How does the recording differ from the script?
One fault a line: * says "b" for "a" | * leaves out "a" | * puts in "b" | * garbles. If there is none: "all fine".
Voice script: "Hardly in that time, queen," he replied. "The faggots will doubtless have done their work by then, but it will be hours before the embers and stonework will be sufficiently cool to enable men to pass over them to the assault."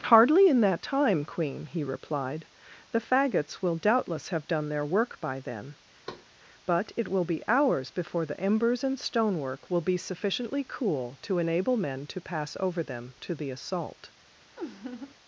all fine